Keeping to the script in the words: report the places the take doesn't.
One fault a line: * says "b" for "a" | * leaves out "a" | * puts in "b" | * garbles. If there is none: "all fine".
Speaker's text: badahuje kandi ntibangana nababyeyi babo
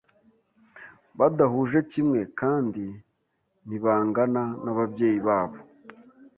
* puts in "kimwe"